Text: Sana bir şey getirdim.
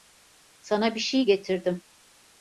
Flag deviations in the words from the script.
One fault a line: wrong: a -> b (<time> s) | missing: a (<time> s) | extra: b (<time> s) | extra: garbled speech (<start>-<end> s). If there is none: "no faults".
no faults